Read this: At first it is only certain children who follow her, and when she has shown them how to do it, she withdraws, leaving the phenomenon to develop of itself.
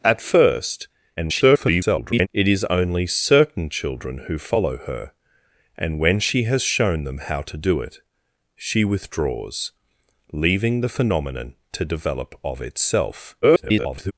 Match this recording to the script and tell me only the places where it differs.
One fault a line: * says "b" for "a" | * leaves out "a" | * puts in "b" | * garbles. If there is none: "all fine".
* garbles
* garbles